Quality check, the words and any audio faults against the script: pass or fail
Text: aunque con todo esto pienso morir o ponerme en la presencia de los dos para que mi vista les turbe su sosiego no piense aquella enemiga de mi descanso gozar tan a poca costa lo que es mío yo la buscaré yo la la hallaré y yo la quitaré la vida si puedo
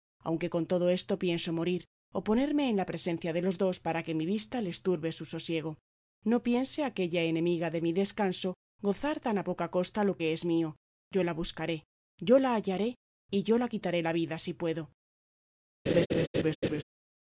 fail